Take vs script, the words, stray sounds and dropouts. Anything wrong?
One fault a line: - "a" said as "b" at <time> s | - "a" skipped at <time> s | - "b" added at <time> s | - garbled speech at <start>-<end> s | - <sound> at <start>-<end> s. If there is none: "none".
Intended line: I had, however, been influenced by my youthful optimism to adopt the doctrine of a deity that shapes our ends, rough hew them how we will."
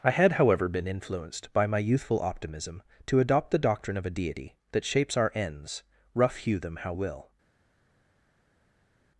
- "we" skipped at 6.9 s